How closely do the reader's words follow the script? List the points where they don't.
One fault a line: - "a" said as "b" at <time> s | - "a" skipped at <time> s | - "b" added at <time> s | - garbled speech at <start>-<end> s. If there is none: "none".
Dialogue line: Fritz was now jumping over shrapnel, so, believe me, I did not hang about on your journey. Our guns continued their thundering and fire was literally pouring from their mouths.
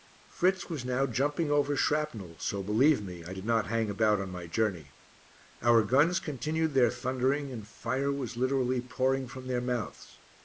- "your" said as "my" at 4.3 s